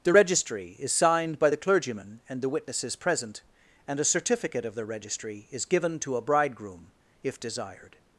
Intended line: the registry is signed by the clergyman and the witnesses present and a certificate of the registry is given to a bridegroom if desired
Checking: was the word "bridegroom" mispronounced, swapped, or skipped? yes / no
no